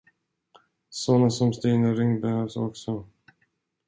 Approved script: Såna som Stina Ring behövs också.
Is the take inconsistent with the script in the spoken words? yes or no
no